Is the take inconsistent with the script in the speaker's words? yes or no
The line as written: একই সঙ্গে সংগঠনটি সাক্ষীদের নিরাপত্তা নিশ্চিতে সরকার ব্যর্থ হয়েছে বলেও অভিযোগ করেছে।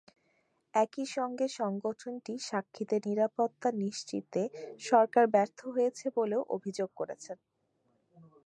no